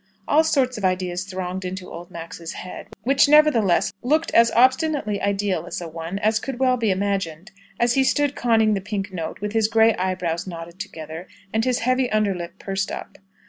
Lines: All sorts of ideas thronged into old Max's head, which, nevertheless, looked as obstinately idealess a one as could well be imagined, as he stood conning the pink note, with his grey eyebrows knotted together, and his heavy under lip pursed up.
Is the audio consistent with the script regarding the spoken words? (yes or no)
yes